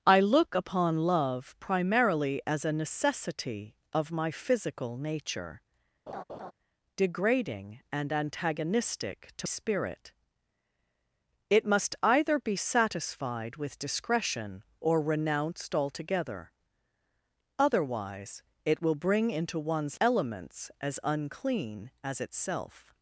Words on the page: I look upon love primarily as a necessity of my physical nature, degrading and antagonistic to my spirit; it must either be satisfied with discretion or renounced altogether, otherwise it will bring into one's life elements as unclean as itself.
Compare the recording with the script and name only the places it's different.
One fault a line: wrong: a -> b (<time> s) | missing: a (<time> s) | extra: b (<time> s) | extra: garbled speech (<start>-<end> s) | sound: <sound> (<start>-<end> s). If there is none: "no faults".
sound: laugh (6.1-6.5 s)
missing: my (9.5 s)
missing: life (20.0 s)